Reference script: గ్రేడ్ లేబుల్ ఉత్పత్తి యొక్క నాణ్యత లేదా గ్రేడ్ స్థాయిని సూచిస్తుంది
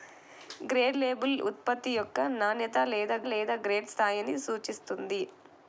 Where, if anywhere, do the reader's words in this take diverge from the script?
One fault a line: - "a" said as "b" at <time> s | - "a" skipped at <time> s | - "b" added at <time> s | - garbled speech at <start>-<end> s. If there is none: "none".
- "లేదా" added at 3.2 s